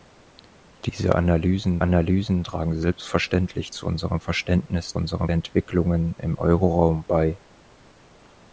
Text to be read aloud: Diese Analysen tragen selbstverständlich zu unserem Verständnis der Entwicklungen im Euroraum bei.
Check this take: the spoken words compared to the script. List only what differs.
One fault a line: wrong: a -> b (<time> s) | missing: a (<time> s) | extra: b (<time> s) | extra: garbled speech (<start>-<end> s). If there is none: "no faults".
extra: Analysen (1.8 s)
wrong: der -> unserem (5.0 s)